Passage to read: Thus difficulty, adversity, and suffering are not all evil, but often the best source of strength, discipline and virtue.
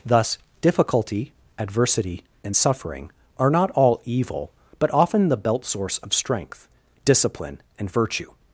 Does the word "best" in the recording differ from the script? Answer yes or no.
yes